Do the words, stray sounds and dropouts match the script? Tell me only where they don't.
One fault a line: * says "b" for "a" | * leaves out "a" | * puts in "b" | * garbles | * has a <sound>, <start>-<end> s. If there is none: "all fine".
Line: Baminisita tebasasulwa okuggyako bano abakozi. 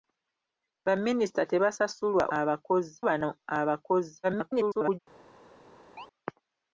* says "abakozi" for "okuggyako"
* garbles
* has a chirp, 6.0-6.1 s